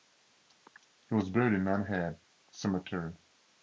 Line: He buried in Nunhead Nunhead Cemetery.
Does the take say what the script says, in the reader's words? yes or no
no